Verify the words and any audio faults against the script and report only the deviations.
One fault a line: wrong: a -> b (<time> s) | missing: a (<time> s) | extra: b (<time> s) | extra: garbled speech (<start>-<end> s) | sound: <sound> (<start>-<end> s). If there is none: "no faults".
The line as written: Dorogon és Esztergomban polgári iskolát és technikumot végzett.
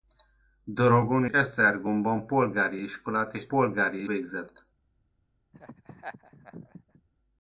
missing: és (1.2 s)
wrong: technikumot -> polgári (3.5 s)
sound: laugh (5.5-7.0 s)